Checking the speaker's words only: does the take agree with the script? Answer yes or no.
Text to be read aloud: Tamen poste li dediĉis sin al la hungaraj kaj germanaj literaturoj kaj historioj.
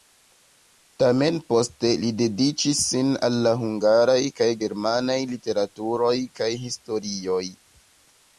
yes